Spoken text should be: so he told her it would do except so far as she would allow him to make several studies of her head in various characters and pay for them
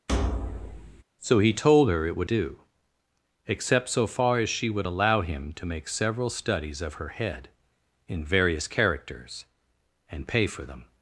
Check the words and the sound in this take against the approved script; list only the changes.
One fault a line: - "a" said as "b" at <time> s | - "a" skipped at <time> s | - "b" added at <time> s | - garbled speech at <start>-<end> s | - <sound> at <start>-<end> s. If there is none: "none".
- thud at 0.1-1.0 s